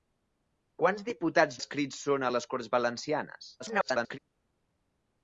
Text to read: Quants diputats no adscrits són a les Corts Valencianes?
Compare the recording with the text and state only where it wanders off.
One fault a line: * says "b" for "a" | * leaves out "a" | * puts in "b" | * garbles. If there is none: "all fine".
* leaves out "no"
* garbles